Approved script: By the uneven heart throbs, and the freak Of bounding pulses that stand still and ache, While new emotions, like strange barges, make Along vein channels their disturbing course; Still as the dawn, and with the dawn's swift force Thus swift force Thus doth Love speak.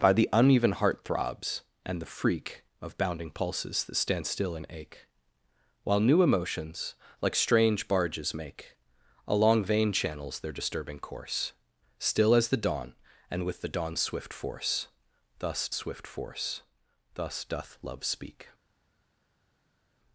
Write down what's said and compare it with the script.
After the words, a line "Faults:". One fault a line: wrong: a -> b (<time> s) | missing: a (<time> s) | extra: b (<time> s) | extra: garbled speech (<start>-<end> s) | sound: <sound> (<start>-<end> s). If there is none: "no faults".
By the uneven heart throbs, and the freak Of bounding pulses that stand still and ache, While new emotions, like strange barges, make Along vein channels their disturbing course; Still as the dawn, and with the dawn's swift force Thus swift force Thus doth Love speak.
Faults:
no faults